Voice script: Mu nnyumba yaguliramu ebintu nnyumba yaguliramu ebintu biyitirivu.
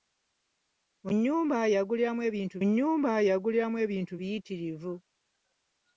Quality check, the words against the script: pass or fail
pass